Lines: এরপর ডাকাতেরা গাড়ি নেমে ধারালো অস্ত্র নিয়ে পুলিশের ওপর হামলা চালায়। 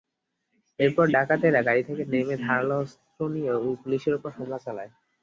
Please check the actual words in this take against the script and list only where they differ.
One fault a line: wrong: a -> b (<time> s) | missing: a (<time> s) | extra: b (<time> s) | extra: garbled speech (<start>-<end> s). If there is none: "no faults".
extra: থেকে (1.9 s)